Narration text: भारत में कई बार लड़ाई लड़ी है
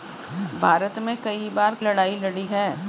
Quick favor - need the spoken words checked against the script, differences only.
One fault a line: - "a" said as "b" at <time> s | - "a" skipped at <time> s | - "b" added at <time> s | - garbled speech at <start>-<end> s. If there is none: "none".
none